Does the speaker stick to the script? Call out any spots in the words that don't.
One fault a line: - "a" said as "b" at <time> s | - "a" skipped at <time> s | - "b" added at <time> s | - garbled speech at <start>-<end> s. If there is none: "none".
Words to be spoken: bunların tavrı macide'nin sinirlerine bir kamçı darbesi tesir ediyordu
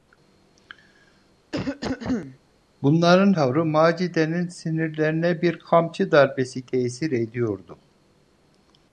none